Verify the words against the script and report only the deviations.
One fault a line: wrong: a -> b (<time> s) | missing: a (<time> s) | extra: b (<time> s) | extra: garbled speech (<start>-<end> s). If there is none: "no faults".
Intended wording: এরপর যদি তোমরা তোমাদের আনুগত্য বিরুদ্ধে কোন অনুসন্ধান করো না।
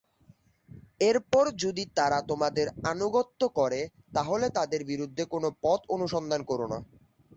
wrong: তোমরা -> তারা (2.0 s)
extra: করে তাহলে তাদের (3.6 s)
extra: পথ (5.6 s)